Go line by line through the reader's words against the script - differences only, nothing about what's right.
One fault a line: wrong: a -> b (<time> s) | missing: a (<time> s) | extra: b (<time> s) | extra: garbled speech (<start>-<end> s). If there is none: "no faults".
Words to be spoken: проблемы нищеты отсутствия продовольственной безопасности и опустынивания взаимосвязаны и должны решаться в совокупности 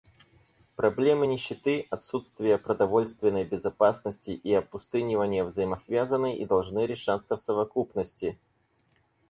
no faults